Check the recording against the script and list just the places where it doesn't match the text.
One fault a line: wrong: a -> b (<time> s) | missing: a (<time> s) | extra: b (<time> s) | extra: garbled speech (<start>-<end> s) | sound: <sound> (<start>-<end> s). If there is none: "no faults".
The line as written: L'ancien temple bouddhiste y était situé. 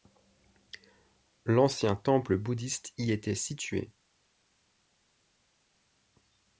no faults